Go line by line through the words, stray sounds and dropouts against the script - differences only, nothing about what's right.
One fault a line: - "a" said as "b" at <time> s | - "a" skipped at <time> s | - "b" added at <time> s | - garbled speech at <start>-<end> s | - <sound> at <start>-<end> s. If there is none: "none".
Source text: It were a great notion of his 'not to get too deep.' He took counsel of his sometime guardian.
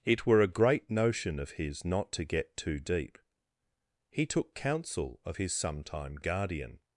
none